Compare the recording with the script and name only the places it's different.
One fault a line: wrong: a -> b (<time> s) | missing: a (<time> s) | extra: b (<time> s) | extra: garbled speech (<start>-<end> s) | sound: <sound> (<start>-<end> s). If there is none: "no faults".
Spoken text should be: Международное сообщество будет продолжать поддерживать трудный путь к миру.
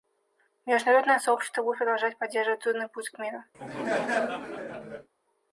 sound: laugh (3.5-5.1 s)